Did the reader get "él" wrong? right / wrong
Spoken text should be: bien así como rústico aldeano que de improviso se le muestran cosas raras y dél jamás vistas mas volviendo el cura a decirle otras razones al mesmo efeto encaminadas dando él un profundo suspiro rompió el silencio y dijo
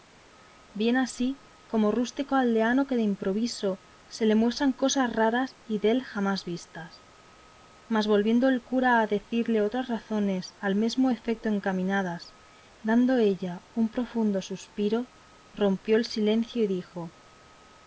wrong